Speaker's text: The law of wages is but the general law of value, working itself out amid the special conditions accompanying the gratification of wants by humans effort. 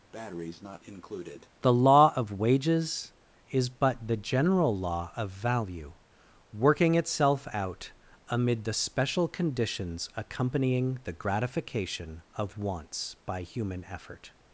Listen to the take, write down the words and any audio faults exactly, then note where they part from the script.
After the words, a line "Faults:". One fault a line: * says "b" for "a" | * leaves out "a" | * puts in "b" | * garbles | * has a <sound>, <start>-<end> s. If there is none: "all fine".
The law of wages is but the general law of value, working itself out amid the special conditions accompanying the gratification of wants by human effort.
Faults:
* has a breath, 0.1-1.5 s
* says "human" for "humans"